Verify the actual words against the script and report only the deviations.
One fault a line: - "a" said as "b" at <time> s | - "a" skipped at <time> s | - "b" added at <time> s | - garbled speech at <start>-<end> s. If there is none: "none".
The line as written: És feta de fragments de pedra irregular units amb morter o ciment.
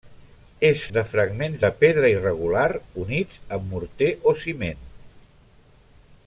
- "feta" skipped at 0.8 s